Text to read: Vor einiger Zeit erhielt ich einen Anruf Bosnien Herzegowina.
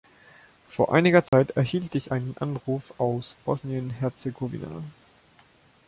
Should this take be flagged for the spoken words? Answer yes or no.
yes